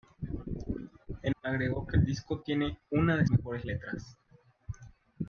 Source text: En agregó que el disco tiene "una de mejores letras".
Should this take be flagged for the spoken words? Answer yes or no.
no